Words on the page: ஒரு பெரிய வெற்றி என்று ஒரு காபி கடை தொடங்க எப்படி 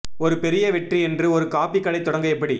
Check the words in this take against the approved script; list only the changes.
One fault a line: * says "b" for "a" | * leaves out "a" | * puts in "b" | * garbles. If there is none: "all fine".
all fine